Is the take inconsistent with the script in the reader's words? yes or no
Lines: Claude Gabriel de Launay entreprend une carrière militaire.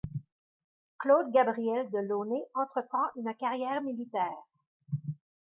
no